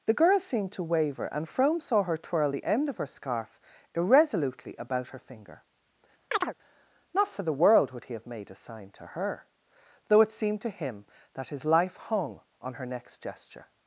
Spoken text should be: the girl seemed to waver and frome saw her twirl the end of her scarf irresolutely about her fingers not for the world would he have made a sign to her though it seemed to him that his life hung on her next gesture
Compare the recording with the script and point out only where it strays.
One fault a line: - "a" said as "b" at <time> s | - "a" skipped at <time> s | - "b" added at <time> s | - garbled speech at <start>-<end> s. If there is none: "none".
- "fingers" said as "finger" at 5.2 s